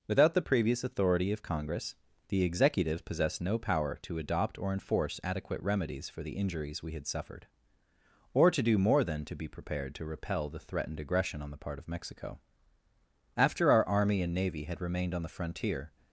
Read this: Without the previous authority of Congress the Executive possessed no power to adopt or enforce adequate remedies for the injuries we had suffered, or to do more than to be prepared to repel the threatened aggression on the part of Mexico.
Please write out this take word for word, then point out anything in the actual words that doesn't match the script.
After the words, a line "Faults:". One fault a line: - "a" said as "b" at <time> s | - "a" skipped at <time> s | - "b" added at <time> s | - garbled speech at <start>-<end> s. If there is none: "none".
Without the previous authority of Congress the Executive possessed no power to adopt or enforce adequate remedies for the injuries we had suffered, or to do more than to be prepared to repel the threatened aggression on the part of Mexico. After our Army and Navy had remained on the frontier
Faults:
- "After our Army and Navy had remained on the frontier" added at 13.4 s